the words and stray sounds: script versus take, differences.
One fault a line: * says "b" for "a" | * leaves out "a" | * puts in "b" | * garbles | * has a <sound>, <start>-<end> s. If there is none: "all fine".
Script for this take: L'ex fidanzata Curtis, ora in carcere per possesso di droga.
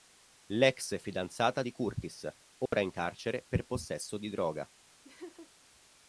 * puts in "di"
* has a dropout, 2.7-2.7 s
* has a laugh, 5.0-5.5 s